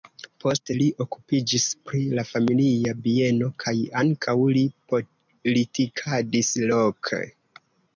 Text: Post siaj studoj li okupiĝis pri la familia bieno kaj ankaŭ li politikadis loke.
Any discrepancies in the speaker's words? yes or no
yes